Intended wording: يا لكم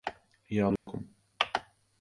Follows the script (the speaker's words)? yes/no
yes